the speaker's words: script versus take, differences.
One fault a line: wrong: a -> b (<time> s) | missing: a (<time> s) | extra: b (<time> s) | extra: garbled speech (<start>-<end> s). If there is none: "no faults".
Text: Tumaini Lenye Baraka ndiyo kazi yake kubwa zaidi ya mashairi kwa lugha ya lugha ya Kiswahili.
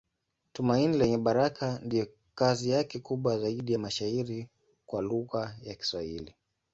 missing: lugha ya (5.7 s)